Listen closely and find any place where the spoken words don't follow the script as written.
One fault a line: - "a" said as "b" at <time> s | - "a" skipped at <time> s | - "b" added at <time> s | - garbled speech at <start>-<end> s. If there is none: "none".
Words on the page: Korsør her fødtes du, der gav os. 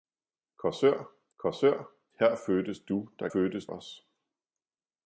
- "korsør" added at 1.4 s
- "gav" said as "fødtes" at 3.3 s